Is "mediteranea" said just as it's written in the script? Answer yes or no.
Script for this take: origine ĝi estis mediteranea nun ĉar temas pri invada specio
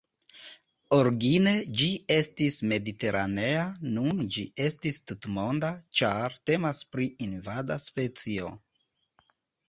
yes